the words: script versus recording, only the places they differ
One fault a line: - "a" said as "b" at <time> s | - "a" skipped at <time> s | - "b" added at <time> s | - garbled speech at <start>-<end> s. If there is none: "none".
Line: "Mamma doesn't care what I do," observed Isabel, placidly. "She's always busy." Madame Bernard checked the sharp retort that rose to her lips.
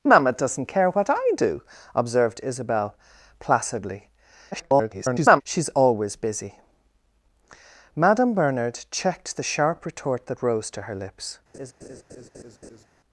- garbled speech at 4.5-5.4 s